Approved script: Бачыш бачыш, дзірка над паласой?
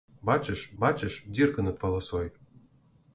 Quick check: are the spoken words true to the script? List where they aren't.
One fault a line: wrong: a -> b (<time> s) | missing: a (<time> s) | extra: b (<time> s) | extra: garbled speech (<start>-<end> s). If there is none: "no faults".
no faults